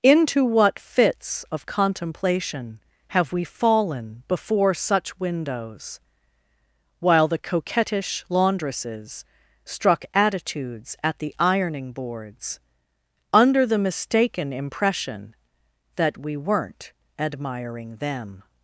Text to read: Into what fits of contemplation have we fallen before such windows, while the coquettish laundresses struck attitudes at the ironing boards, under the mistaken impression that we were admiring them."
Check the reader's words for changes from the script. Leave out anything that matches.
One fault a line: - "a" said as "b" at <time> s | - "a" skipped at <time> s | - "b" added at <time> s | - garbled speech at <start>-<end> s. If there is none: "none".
- "were" said as "weren't" at 16.4 s